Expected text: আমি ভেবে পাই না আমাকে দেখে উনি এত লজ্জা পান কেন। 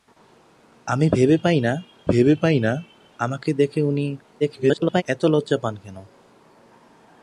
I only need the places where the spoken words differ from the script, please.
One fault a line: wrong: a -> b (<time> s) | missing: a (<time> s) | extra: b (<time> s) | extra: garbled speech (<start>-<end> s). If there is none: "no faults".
extra: ভেবে পাই না (2.1 s)
extra: garbled speech (4.4-5.0 s)